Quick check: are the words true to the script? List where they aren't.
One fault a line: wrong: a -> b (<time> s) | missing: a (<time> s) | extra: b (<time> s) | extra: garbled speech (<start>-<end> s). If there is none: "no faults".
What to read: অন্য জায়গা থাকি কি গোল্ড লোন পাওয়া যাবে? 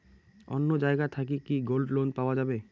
no faults